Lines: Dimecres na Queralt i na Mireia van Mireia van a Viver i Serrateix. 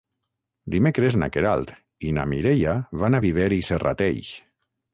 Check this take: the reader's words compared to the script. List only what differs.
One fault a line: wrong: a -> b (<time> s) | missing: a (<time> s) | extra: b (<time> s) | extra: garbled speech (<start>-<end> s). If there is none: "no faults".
missing: Mireia van (3.2 s)